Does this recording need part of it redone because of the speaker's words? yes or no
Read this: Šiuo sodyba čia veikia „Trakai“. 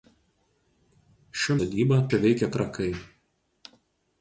no